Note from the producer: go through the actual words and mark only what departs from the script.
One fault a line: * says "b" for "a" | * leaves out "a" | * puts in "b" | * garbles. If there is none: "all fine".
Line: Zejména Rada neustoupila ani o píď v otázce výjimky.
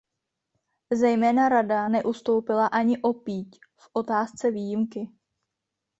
all fine